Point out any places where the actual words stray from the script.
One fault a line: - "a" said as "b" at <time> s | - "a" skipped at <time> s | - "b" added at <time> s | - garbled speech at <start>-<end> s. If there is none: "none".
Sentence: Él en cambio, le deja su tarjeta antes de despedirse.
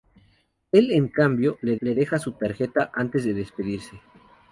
- "le" added at 1.8 s